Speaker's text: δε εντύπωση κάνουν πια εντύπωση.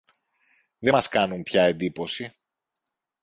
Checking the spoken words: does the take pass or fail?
fail